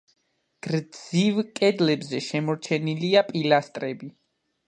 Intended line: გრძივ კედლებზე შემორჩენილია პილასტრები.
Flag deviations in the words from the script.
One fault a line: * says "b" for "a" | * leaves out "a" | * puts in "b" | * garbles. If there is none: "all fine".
all fine